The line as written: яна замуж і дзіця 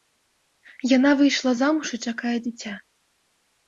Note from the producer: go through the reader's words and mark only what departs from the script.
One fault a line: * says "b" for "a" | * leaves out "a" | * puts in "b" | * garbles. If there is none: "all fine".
* puts in "выйшла"
* puts in "чакае"